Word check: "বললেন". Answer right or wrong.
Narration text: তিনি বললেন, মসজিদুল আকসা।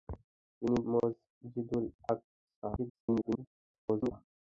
wrong